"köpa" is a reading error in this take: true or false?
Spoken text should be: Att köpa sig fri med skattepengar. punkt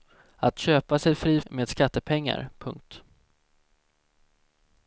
false